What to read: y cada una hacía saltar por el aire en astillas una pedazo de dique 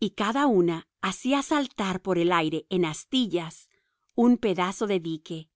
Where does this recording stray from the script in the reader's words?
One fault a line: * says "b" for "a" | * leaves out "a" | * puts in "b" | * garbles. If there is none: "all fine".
* says "un" for "una"